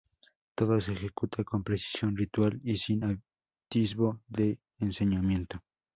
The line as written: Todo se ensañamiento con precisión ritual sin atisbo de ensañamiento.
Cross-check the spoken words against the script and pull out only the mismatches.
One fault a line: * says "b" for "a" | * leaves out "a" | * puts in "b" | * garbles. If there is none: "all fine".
* says "ejecuta" for "ensañamiento"
* puts in "y"